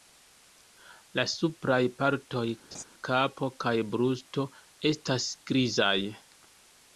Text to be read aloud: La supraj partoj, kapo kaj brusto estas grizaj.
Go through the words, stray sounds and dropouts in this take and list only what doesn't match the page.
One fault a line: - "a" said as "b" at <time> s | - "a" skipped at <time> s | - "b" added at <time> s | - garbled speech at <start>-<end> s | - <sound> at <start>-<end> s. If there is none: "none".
- laugh at 2.7-2.8 s